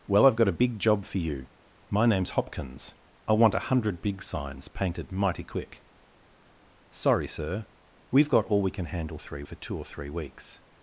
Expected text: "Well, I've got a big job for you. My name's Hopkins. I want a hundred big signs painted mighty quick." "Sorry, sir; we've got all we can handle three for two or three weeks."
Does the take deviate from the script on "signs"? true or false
false